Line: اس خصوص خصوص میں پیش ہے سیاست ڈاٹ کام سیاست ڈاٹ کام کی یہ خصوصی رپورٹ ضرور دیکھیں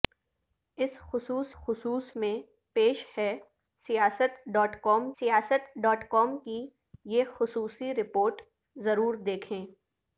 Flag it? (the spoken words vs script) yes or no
no